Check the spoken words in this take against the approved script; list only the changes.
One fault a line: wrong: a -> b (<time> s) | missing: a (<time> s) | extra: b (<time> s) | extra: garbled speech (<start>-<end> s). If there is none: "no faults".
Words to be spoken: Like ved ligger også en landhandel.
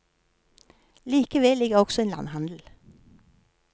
no faults